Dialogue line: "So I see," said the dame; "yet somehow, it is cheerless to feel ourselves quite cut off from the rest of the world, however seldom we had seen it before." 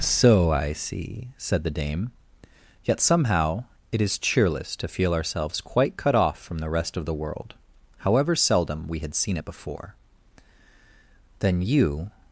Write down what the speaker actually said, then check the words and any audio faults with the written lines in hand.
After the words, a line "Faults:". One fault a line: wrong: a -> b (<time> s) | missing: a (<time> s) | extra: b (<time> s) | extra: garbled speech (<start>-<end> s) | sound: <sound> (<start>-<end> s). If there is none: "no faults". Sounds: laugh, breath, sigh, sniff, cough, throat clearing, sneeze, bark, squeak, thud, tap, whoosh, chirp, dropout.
"So I see," said the dame; "yet somehow, it is cheerless to feel ourselves quite cut off from the rest of the world, however seldom we had seen it before." "Then you
Faults:
extra: Then you (11.4 s)